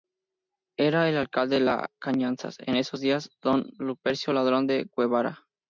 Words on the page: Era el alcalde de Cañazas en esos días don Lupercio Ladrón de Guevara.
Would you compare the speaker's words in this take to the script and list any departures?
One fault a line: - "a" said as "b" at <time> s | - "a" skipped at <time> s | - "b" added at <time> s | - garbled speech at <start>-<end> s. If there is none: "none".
none